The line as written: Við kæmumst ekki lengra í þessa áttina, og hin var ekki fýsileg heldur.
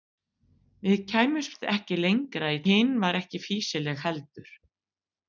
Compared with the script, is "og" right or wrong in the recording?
wrong